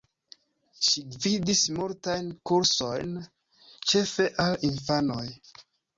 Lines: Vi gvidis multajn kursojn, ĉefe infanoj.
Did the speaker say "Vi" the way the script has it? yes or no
no